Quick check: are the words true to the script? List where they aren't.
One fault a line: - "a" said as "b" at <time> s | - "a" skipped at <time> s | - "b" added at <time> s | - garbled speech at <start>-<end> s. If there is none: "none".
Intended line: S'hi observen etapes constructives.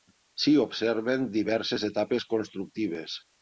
- "diverses" added at 1.4 s